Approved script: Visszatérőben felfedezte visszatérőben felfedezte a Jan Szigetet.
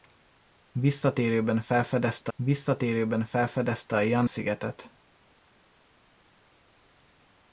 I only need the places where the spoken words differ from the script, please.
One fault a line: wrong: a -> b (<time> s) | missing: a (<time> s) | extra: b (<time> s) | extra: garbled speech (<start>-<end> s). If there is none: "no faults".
no faults